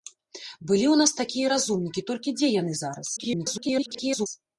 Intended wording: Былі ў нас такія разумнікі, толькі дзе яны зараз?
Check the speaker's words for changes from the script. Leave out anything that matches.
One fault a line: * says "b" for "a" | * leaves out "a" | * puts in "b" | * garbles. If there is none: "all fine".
* garbles